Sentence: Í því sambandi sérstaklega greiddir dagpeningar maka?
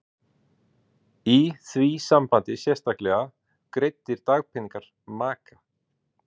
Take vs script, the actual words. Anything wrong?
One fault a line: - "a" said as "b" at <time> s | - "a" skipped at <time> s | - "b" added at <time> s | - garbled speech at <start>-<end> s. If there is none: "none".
none